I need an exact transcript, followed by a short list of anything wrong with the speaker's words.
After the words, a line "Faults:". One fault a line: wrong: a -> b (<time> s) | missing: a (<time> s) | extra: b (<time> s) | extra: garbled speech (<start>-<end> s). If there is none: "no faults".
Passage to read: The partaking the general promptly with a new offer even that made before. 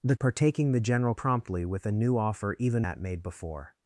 The partaking the general promptly with a new offer even that made before.
Faults:
no faults